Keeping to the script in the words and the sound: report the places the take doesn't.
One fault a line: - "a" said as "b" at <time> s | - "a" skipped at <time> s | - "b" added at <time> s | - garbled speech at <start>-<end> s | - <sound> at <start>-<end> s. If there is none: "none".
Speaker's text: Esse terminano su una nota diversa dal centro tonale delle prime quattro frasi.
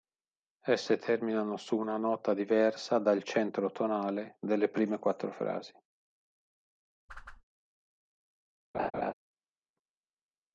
- whoosh at 7.1-7.4 s
- laugh at 8.7-9.1 s